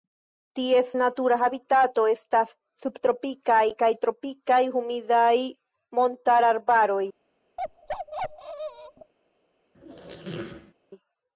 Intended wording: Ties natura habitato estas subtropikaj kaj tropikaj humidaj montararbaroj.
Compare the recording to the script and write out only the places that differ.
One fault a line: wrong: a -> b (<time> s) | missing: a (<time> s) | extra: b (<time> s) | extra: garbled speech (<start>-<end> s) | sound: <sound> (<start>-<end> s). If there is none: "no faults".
sound: bark (7.6-9.1 s)
sound: squeak (9.7-10.7 s)